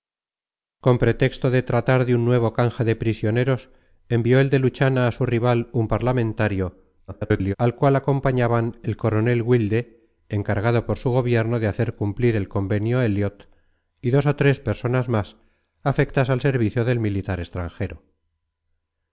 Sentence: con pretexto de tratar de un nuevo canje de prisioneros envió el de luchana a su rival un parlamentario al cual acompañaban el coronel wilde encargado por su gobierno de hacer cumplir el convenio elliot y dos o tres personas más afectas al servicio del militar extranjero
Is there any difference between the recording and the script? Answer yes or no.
yes